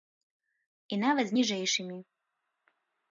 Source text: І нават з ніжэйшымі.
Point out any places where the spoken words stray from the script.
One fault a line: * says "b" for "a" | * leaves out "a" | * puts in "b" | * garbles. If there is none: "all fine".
all fine